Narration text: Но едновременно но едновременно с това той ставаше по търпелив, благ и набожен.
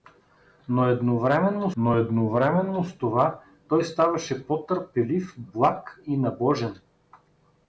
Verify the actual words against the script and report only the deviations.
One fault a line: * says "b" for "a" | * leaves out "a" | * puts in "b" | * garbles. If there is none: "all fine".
all fine